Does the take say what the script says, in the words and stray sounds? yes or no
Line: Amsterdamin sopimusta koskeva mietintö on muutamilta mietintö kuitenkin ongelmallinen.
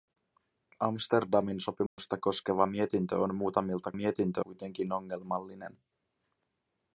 no